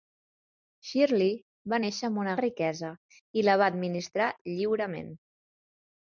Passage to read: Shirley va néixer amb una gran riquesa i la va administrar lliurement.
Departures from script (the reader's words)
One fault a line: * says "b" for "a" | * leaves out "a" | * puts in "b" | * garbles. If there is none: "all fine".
* leaves out "gran"